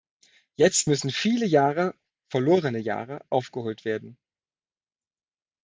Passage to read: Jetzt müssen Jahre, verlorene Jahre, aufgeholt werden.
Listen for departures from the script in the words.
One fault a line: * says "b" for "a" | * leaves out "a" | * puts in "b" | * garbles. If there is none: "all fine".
* puts in "viele"